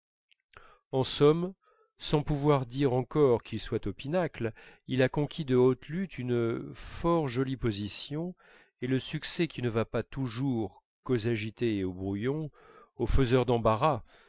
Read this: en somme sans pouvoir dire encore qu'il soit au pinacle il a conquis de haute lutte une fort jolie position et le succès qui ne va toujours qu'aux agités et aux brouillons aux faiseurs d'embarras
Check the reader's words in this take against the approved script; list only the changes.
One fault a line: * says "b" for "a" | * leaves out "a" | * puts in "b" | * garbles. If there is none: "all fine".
* puts in "pas"